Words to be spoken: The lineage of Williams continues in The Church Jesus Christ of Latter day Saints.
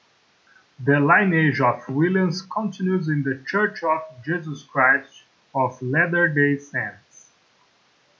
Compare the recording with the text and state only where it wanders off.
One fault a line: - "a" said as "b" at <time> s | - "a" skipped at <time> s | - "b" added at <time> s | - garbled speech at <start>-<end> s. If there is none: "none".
- "of" added at 3.8 s